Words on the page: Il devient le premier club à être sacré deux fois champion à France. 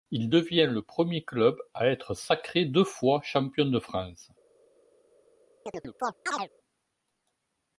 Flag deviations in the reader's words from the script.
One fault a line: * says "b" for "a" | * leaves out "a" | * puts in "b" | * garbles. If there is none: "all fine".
* says "de" for "à"